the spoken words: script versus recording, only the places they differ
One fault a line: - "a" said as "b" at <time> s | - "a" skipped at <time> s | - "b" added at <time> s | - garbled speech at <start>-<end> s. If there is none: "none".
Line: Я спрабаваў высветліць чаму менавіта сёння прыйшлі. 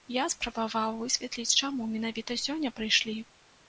none